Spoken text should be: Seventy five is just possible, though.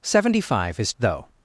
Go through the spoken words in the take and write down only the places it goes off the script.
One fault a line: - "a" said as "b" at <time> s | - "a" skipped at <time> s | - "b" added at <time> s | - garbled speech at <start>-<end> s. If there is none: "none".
- "just possible" skipped at 0.9 s